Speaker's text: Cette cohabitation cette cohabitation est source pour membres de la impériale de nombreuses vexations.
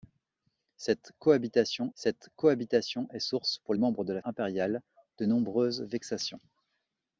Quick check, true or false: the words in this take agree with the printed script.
true